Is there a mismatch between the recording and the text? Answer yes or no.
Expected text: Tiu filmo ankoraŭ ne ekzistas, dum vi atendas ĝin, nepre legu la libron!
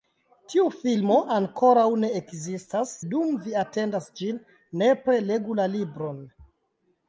no